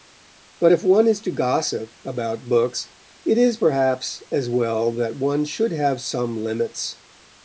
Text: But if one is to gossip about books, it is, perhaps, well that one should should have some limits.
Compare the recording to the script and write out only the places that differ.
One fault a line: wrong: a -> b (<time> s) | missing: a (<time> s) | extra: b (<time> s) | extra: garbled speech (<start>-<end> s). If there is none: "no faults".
extra: as (4.3 s)
missing: should (5.7 s)